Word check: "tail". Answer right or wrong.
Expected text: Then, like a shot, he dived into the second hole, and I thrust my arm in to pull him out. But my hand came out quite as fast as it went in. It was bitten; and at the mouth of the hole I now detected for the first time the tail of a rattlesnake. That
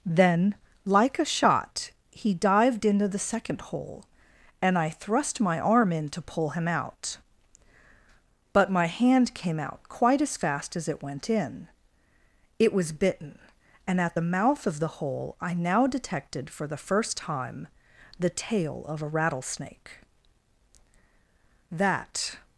right